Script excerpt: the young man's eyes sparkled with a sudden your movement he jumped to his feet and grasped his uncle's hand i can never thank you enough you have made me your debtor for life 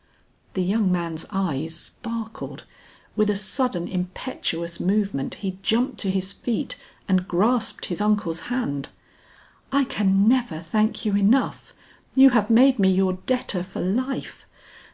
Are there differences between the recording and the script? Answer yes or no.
yes